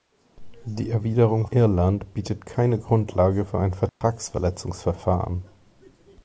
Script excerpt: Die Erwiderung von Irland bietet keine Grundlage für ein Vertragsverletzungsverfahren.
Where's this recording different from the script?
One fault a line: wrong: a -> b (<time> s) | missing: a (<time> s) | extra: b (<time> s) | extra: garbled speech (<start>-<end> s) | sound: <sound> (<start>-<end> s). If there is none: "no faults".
missing: von (1.4 s)
sound: dropout (3.9-4.0 s)